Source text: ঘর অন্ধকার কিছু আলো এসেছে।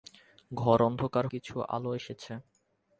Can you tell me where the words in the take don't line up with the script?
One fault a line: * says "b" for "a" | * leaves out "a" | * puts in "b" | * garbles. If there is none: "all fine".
all fine